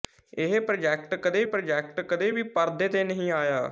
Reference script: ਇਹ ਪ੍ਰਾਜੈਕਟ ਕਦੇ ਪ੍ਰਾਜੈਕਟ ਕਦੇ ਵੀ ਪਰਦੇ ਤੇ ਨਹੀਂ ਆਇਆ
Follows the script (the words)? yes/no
yes